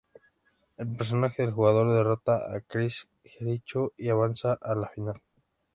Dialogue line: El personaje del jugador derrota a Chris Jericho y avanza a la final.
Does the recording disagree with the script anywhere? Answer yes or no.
no